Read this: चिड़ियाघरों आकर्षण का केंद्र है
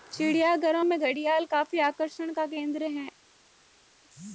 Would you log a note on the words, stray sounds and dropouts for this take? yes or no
yes